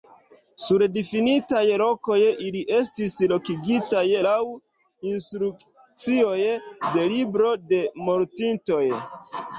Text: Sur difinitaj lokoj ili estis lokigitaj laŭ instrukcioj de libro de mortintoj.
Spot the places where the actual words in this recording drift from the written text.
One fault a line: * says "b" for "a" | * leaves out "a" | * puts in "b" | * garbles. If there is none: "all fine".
all fine